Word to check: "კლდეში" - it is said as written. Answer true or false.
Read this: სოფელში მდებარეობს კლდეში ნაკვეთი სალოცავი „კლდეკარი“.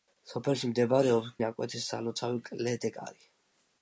false